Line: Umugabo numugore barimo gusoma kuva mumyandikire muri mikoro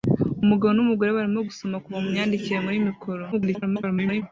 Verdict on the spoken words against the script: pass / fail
fail